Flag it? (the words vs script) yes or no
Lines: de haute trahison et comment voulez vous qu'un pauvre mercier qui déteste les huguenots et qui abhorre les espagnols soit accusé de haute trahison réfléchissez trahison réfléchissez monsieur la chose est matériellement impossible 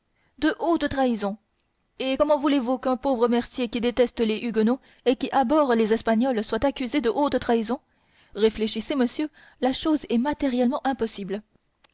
yes